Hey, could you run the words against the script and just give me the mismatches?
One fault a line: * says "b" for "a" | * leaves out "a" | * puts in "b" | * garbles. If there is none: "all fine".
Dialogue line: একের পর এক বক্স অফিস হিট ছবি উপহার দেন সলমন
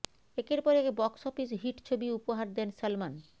all fine